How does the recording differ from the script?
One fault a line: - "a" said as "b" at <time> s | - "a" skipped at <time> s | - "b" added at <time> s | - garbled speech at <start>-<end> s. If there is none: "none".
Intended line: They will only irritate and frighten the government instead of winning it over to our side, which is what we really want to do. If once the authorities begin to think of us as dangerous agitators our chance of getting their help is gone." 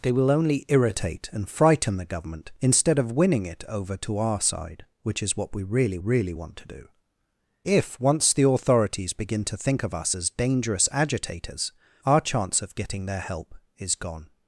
- "really" added at 6.0 s